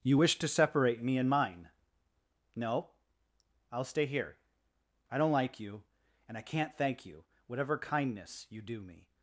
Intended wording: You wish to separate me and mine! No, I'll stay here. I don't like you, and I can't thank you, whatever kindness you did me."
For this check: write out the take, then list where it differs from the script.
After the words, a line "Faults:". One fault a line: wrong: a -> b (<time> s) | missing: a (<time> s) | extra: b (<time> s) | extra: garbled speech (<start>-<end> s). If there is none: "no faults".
You wish to separate me and mine! No, I'll stay here. I don't like you, and I can't thank you, whatever kindness you do me."
Faults:
wrong: did -> do (8.6 s)